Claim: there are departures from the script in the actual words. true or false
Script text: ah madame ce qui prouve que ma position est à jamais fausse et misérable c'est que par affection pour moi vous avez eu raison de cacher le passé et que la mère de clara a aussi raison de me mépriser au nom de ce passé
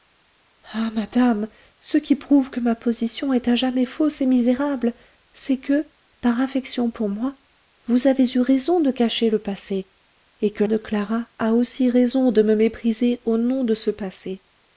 true